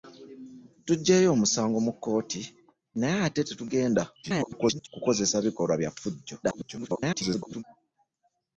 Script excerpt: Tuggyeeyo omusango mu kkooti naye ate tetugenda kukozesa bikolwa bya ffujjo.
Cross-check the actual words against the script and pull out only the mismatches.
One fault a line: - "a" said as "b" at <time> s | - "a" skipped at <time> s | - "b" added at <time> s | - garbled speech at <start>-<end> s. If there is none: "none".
- garbled speech at 4.2-4.9 s
- garbled speech at 6.4-7.6 s